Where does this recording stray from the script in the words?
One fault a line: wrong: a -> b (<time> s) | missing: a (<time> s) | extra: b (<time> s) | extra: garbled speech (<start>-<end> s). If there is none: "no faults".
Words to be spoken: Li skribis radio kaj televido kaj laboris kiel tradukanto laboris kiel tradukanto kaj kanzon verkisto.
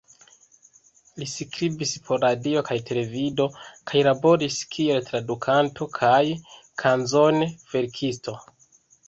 extra: por (2.1 s)
missing: laboris kiel tradukanto (5.9 s)